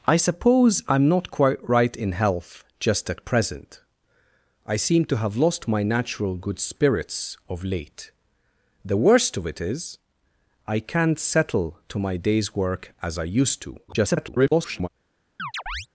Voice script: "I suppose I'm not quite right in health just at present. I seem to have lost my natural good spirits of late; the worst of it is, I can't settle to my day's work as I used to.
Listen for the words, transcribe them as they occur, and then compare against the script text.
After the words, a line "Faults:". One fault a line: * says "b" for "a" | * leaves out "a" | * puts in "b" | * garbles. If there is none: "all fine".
"I suppose I'm not quite right in health just at present. I seem to have lost my natural good spirits of late; the worst of it is, I can't settle to my day's work as I used to. [garbled]
Faults:
* garbles